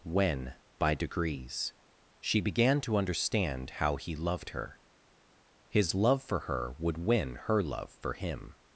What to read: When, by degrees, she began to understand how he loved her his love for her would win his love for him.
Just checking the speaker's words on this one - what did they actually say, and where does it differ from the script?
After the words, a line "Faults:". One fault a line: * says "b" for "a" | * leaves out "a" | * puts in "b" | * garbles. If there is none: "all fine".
When, by degrees, she began to understand how he loved her his love for her would win her love for him.
Faults:
* says "her" for "his"